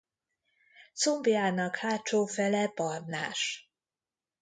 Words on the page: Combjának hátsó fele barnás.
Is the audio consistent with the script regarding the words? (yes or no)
yes